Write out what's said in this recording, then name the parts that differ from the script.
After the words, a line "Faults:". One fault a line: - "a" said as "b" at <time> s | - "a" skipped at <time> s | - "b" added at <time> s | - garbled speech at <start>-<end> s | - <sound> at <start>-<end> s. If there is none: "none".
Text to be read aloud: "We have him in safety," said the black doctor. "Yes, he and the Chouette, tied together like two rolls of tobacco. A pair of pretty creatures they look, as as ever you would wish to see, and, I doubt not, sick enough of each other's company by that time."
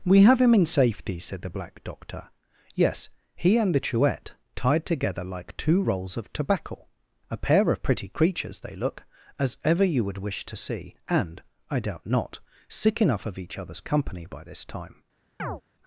"We have him in safety," said the black doctor. "Yes, he and the Chouette, tied together like two rolls of tobacco. A pair of pretty creatures they look, as ever you would wish to see, and, I doubt not, sick enough of each other's company by this time."
Faults:
- "as" skipped at 9.6 s
- "that" said as "this" at 14.4 s
- chirp at 15.4-15.6 s